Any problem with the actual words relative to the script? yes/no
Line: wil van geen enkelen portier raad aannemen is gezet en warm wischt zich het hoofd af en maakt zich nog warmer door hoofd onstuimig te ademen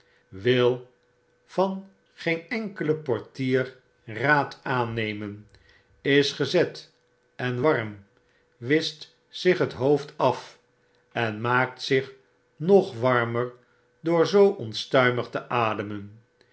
yes